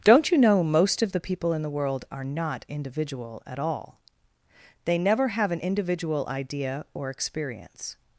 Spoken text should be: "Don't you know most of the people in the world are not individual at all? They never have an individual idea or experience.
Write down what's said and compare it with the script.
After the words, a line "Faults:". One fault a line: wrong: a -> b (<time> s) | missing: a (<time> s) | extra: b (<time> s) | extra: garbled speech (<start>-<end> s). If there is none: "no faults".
"Don't you know most of the people in the world are not individual at all? They never have an individual idea or experience.
Faults:
no faults